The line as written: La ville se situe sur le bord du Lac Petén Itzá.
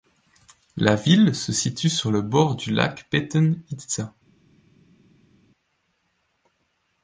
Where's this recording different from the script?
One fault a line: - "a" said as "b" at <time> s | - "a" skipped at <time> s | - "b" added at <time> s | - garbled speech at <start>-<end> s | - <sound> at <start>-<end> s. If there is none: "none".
none